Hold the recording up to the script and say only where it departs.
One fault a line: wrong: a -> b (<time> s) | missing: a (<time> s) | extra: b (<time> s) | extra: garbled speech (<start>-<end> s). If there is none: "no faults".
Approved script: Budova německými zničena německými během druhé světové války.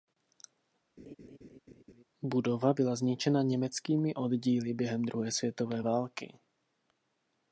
wrong: německými -> byla (2.7 s)
extra: oddíly (4.1 s)